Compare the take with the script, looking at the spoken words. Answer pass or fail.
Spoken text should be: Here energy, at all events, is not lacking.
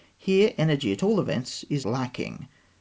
fail